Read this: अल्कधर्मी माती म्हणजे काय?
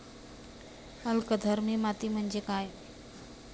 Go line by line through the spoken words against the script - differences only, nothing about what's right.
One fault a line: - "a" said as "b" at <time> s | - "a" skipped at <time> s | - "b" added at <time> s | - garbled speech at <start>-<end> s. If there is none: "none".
none